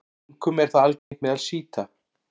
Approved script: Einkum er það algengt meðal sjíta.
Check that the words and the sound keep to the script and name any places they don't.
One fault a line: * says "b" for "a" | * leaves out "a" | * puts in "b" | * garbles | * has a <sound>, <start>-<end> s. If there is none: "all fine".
* has a dropout, 1.0-1.1 s